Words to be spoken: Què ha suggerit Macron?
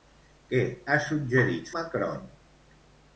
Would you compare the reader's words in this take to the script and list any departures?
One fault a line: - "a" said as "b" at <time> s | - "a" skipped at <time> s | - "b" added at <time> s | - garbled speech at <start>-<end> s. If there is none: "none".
none